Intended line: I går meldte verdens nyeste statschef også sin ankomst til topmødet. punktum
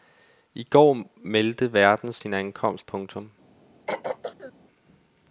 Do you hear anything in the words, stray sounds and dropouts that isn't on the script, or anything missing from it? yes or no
yes